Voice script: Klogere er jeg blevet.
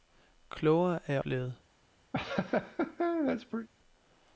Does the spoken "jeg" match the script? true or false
true